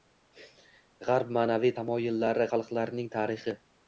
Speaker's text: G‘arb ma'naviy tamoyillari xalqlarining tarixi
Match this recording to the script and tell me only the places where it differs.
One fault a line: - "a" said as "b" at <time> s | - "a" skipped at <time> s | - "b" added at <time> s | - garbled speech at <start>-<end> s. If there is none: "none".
none